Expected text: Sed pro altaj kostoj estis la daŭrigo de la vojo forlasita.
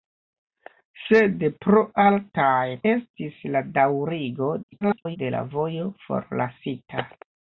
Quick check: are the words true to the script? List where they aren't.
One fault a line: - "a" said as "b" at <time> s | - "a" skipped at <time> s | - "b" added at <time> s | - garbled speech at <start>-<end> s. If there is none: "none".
- "kostoj" skipped at 2.6 s
- garbled speech at 4.6-5.2 s